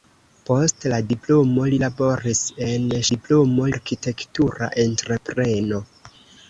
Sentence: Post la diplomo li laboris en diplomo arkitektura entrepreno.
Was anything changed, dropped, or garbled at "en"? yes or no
no